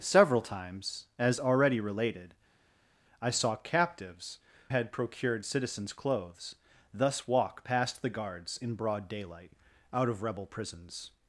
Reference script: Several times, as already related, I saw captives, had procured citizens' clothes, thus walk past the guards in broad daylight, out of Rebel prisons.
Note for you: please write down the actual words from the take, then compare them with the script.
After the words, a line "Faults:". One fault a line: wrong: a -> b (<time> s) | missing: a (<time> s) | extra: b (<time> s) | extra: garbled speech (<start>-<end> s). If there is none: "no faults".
Several times, as already related, I saw captives, had procured citizens' clothes, thus walk past the guards in broad daylight, out of Rebel prisons.
Faults:
no faults